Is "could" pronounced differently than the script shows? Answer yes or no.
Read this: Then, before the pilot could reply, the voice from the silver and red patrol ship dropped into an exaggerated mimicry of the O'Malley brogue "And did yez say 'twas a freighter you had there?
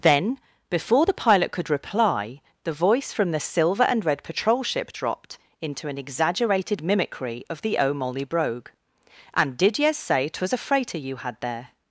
no